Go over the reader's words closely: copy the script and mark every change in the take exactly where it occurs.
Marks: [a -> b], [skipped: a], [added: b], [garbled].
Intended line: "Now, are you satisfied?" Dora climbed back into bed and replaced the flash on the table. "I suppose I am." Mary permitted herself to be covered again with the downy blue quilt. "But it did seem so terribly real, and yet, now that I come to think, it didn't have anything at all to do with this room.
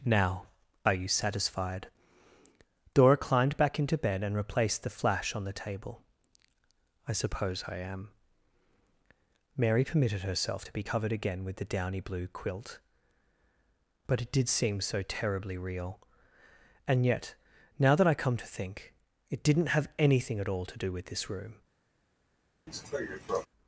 "Now, are you satisfied?" Dora climbed back into bed and replaced the flash on the table. "I suppose I am." Mary permitted herself to be covered again with the downy blue quilt. "But it did seem so terribly real, and yet, now that I come to think, it didn't have anything at all to do with this room.